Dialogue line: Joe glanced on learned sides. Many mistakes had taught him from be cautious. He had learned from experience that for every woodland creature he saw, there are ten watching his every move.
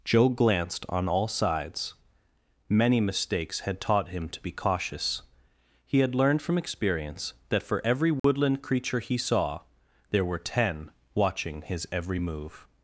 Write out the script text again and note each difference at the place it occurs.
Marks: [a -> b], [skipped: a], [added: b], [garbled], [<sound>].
Joe glanced on [learned -> all] sides. Many mistakes had taught him [from -> to] be cautious. He had learned from experience that for every woodland [dropout] creature he saw, there [are -> were] ten watching his every move.